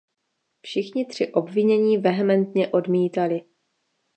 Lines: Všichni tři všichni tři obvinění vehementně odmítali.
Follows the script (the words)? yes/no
no